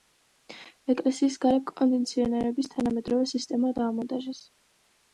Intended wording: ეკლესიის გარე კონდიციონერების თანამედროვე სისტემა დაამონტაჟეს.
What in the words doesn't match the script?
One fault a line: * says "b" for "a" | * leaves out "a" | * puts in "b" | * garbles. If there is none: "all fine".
all fine